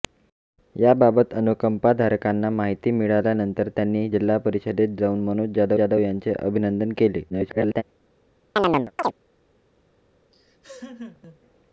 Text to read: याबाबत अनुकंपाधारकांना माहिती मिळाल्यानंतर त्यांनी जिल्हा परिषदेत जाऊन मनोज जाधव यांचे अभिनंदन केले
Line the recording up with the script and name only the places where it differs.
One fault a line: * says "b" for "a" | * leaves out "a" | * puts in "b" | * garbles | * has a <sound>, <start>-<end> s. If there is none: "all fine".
* puts in "जाधव"
* garbles
* has a chirp, 8.6-9.1 s
* has a laugh, 10.3-11.4 s